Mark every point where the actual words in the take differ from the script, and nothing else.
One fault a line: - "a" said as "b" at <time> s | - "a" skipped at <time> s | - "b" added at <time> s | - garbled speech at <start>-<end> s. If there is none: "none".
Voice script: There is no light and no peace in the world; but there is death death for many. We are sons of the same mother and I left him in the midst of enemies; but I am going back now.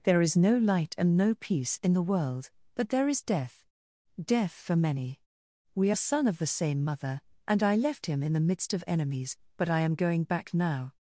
- "sons" said as "son" at 5.9 s